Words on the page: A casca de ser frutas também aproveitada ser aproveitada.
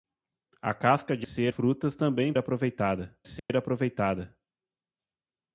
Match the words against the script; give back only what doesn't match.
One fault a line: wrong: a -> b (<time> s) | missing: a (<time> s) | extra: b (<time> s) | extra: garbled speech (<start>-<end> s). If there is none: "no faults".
no faults